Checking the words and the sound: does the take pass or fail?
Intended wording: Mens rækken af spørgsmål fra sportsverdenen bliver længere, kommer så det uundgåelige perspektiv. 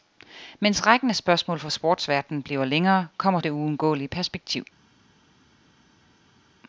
fail